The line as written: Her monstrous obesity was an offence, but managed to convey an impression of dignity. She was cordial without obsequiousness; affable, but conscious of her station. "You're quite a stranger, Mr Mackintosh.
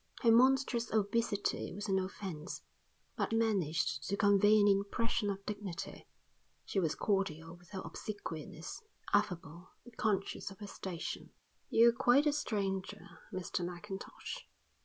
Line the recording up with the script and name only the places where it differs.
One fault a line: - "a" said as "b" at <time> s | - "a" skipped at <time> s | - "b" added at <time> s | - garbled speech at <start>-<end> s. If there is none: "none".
none